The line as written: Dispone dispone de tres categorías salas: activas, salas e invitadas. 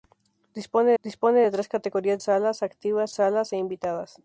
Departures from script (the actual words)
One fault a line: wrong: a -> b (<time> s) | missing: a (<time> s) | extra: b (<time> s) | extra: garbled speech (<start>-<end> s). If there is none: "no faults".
no faults